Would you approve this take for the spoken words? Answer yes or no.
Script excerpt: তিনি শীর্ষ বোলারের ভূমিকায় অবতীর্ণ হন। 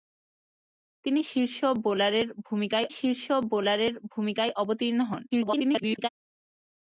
no